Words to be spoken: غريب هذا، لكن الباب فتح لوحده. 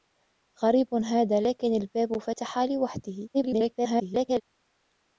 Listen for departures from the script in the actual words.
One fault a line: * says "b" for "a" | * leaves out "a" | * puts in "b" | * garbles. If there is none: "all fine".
* garbles